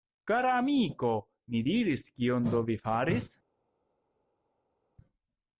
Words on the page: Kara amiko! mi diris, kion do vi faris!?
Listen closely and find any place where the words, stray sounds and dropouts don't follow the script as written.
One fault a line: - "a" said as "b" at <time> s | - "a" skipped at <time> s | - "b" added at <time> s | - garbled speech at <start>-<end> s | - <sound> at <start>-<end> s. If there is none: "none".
none